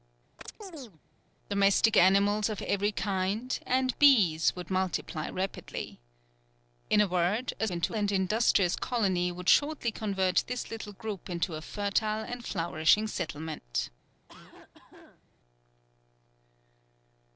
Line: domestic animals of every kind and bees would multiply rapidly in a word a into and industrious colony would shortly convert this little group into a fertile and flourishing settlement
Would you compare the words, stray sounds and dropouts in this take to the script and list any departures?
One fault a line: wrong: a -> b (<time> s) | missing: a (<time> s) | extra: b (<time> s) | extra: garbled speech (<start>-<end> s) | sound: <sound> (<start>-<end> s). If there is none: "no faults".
sound: chirp (0.4-1.0 s)
sound: cough (14.3-15.2 s)